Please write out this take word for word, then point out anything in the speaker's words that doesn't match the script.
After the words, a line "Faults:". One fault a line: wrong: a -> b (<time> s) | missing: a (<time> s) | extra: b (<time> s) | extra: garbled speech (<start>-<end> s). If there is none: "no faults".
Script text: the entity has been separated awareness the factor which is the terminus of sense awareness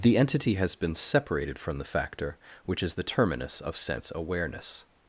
the entity has been separated from the factor which is the terminus of sense awareness
Faults:
wrong: awareness -> from (1.6 s)